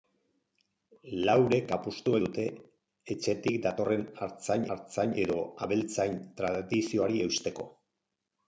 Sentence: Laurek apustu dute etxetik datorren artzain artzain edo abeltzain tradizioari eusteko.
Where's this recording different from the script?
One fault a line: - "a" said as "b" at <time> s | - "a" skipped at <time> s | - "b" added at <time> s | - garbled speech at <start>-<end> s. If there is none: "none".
none